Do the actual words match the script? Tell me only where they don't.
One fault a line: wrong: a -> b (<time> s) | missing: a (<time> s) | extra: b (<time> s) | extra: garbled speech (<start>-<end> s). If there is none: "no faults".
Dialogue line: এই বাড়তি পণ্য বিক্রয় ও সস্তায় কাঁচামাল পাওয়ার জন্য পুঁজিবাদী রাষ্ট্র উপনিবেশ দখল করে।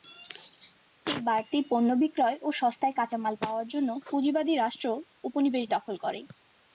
no faults